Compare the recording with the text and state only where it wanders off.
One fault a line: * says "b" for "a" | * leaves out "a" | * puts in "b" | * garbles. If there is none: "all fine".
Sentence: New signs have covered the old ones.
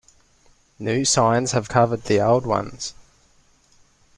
all fine